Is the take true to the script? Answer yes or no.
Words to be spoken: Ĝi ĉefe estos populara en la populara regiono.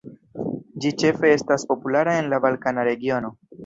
no